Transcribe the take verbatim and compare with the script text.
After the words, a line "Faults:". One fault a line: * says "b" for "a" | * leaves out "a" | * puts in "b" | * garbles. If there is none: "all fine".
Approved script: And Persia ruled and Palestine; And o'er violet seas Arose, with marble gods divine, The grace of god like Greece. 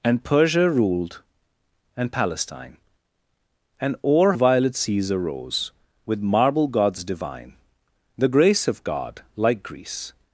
And Persia ruled and Palestine; And o'er violet seas Arose, with marble gods divine, The grace of god like Greece.
Faults:
all fine